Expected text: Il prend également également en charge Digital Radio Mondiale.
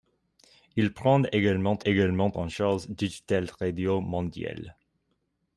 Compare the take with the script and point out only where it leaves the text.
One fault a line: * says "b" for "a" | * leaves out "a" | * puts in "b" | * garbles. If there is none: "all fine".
all fine